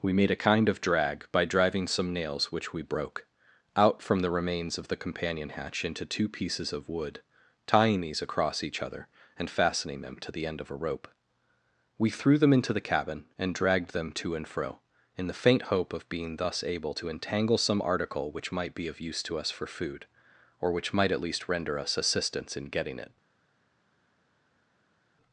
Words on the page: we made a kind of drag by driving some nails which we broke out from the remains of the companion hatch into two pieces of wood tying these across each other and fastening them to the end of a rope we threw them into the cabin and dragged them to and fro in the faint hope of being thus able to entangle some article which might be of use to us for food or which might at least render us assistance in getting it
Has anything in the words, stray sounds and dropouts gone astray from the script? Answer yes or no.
no